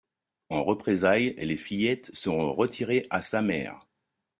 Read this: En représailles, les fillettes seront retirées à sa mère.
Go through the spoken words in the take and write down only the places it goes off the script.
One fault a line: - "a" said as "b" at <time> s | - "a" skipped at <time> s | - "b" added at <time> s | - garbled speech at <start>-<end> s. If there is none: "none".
none